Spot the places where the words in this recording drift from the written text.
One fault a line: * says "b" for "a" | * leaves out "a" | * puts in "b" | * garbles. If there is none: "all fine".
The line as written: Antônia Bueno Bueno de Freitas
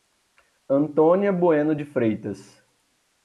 * leaves out "Bueno"